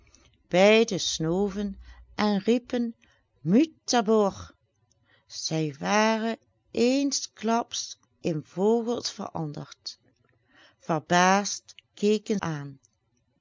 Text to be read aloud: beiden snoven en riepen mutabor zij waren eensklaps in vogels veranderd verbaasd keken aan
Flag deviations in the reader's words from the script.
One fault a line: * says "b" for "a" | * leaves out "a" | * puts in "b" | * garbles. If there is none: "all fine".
all fine